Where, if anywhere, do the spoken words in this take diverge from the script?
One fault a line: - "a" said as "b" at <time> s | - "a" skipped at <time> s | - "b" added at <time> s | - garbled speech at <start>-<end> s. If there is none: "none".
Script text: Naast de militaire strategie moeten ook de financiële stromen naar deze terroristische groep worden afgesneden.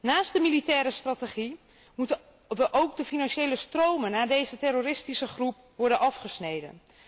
none